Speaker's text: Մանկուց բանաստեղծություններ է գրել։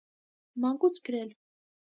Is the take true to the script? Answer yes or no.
no